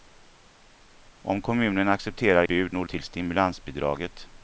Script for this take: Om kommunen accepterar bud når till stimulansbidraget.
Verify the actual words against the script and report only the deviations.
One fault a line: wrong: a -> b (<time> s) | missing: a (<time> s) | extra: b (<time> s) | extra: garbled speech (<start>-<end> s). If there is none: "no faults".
no faults